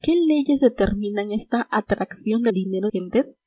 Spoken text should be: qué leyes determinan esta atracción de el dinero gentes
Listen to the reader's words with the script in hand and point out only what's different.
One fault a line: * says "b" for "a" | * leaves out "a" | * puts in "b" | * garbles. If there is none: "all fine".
all fine